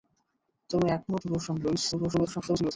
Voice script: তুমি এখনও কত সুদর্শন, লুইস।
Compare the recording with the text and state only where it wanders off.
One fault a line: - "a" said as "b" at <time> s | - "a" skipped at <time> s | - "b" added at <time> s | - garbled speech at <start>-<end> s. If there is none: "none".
- "কত" skipped at 1.2 s
- garbled speech at 1.9-2.7 s